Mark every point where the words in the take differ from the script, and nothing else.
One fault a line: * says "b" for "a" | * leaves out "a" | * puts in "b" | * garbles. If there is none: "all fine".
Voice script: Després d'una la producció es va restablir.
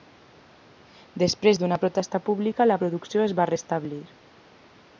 * puts in "protesta pública"